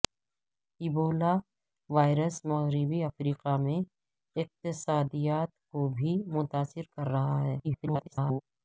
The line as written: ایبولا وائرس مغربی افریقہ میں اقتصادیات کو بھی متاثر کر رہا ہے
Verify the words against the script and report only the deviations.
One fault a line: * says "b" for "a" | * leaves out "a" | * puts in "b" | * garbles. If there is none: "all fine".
* garbles